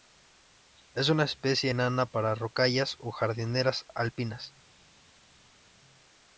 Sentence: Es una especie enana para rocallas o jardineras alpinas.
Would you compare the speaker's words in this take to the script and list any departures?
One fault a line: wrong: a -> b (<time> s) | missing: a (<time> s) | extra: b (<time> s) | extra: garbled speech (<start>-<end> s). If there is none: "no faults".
no faults